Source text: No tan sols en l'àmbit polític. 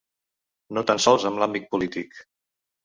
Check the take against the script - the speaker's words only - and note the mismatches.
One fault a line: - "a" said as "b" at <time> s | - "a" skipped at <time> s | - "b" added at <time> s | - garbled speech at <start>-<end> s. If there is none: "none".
none